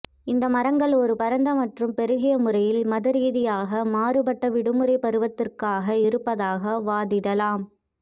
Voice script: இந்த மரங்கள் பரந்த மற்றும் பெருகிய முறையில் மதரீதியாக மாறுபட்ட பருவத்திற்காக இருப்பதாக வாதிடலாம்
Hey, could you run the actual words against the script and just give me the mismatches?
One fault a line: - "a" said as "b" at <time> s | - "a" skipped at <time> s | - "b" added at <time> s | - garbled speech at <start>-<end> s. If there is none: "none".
- "ஒரு" added at 1.0 s
- "விடுமுறை" added at 4.5 s